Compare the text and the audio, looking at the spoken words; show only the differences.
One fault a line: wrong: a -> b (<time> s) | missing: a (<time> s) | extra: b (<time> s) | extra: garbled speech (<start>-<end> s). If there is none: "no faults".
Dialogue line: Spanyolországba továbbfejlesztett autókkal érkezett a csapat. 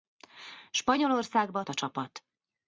missing: továbbfejlesztett autókkal érkezett (1.6 s)